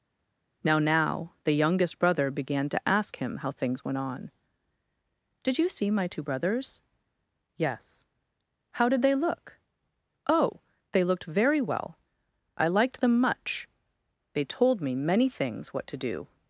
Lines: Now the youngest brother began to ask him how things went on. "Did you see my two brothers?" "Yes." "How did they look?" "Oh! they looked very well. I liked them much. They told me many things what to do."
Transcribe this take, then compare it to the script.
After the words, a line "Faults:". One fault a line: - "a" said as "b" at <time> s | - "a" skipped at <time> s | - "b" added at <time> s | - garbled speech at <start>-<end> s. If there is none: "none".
Now now the youngest brother began to ask him how things went on. "Did you see my two brothers?" "Yes." "How did they look?" "Oh! they looked very well. I liked them much. They told me many things what to do."
Faults:
- "now" added at 0.8 s